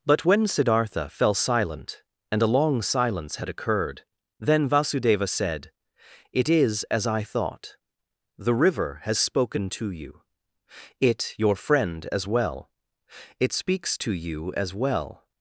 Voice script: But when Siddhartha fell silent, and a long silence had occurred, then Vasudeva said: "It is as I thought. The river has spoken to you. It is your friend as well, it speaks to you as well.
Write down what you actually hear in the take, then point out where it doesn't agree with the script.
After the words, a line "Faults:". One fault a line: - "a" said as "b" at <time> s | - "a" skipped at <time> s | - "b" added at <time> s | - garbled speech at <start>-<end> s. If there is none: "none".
But when Siddhartha fell silent, and a long silence had occurred, then Vasudeva said: "It is as I thought. The river has spoken to you. It your friend as well, it speaks to you as well.
Faults:
- "is" skipped at 11.3 s